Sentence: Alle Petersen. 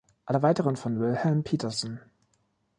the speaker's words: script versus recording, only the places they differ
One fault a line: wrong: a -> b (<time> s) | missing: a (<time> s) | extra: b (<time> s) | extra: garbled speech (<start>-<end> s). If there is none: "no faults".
extra: weiteren von Wilhelm (0.4 s)